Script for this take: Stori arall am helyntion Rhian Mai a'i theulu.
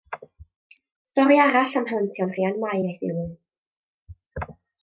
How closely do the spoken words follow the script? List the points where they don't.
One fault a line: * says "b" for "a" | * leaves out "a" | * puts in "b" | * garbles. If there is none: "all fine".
all fine